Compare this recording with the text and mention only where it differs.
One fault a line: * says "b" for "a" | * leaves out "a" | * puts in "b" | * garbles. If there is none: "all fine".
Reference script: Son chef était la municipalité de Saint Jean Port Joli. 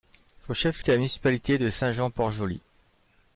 all fine